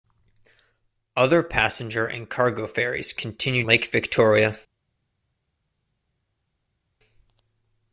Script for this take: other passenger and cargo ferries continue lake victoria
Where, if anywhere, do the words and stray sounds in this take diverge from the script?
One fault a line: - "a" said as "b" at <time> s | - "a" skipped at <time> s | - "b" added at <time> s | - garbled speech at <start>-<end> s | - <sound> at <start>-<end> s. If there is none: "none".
none